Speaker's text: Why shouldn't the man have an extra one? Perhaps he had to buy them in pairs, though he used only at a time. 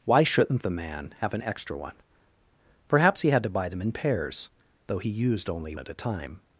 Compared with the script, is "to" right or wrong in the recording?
right